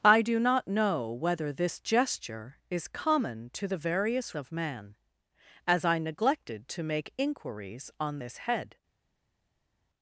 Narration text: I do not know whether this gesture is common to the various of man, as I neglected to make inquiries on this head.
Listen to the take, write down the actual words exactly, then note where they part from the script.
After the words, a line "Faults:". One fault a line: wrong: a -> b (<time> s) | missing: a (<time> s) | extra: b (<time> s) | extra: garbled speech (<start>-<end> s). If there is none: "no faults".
I do not know whether this gesture is common to the various of man, as I neglected to make inquiries on this head.
Faults:
no faults